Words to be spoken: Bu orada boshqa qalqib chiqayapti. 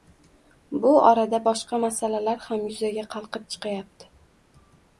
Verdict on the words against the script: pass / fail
fail